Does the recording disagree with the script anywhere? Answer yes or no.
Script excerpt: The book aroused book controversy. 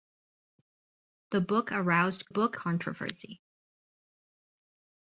no